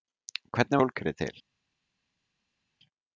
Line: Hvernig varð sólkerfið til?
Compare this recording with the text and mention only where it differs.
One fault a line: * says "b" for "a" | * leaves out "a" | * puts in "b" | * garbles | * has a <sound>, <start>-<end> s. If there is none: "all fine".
* leaves out "varð"